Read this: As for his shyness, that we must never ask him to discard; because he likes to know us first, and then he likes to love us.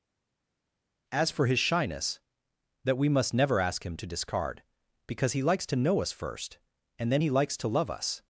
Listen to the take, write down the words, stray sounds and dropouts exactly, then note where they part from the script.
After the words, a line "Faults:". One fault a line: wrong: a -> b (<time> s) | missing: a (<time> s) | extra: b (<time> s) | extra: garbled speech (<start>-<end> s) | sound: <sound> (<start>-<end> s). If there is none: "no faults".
As for his shyness, that we must never ask him to discard; because he likes to know us first, and then he likes to love us.
Faults:
no faults